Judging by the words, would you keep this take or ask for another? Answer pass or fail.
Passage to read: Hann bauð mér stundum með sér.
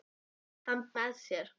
fail